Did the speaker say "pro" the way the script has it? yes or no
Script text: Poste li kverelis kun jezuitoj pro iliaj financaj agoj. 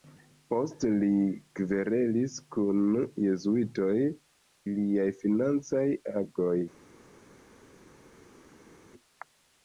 no